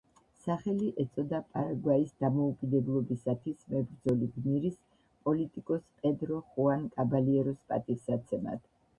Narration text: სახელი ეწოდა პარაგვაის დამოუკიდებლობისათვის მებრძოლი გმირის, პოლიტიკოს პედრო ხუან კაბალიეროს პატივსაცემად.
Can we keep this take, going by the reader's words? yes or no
yes